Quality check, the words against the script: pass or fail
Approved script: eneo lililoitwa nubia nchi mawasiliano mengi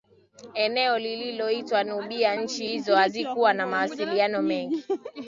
fail